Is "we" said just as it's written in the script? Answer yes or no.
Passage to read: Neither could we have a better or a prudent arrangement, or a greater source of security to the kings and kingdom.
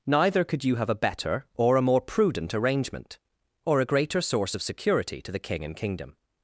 no